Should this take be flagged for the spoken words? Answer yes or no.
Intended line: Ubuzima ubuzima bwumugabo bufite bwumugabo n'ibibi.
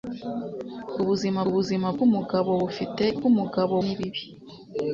no